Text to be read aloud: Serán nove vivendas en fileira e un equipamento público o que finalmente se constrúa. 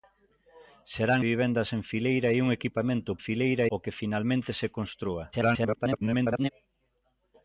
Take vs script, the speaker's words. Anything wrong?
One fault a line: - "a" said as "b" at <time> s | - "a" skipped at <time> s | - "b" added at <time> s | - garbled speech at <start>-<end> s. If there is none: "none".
- "nove" skipped at 1.2 s
- "público" said as "fileira" at 3.2 s
- garbled speech at 5.3-6.5 s